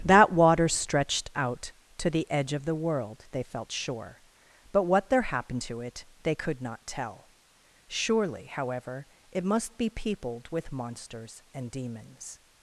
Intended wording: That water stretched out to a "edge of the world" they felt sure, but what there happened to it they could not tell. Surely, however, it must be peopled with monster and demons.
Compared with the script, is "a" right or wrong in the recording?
wrong